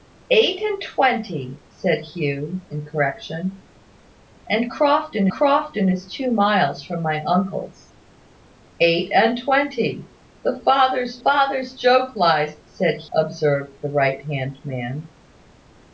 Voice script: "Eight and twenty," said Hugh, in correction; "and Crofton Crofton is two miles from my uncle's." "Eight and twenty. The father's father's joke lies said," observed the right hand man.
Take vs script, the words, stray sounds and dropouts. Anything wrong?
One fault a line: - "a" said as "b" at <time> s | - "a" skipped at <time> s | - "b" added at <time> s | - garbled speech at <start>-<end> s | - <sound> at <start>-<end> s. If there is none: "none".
none